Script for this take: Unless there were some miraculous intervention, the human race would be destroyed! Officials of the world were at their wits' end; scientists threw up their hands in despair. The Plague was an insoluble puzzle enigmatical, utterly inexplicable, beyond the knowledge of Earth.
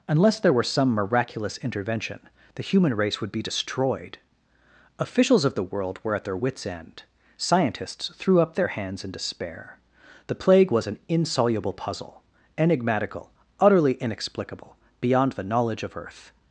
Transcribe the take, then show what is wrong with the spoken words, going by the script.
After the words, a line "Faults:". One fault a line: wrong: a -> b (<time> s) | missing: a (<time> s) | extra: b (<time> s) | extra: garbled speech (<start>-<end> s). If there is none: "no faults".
Unless there were some miraculous intervention, the human race would be destroyed! Officials of the world were at their wits' end; scientists threw up their hands in despair. The Plague was an insoluble puzzle enigmatical, utterly inexplicable, beyond the knowledge of Earth.
Faults:
no faults